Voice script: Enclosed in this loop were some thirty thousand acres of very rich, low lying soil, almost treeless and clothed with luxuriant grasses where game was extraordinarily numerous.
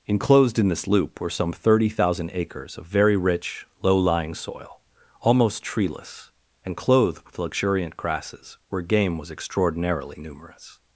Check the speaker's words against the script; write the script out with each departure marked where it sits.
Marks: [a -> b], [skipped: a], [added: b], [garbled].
Enclosed in this loop were some thirty thousand acres of very rich, low lying soil, almost treeless and clothed with luxuriant grasses where game was extraordinarily numerous.